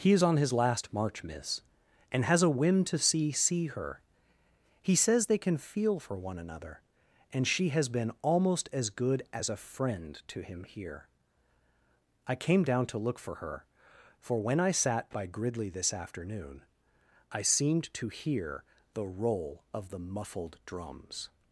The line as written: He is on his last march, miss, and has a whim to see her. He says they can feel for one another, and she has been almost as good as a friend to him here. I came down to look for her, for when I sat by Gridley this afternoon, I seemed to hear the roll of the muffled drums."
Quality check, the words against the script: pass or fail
fail